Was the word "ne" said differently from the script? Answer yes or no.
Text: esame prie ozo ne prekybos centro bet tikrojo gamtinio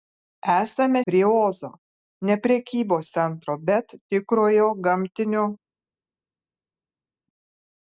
no